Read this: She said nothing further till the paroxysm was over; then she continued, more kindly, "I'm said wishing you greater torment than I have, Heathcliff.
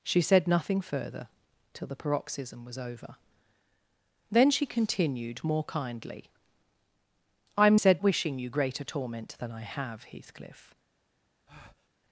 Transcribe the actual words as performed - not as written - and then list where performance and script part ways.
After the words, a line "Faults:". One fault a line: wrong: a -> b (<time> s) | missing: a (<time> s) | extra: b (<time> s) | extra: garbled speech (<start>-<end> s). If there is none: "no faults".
She said nothing further till the paroxysm was over; then she continued, more kindly, "I'm said wishing you greater torment than I have, Heathcliff.
Faults:
no faults